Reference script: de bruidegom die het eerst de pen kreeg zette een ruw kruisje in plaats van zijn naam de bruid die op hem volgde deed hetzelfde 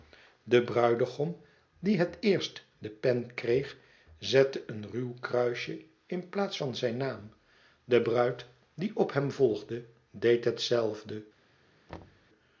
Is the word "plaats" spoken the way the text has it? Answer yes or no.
yes